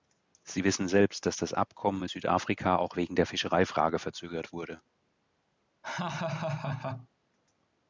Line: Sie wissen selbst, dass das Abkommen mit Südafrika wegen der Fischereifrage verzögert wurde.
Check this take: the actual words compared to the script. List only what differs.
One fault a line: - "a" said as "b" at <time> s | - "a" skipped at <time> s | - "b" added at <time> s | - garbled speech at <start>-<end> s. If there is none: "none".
- "auch" added at 2.8 s